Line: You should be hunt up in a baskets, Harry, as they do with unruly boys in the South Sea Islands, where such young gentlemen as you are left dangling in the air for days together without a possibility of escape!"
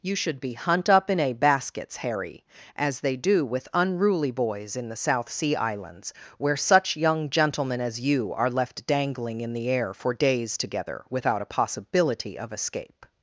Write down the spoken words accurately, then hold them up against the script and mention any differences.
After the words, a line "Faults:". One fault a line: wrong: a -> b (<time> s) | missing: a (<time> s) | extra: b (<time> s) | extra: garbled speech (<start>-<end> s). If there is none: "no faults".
You should be hunt up in a baskets, Harry, as they do with unruly boys in the South Sea Islands, where such young gentlemen as you are left dangling in the air for days together without a possibility of escape!"
Faults:
no faults